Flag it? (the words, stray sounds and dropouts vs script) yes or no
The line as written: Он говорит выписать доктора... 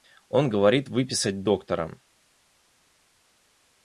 no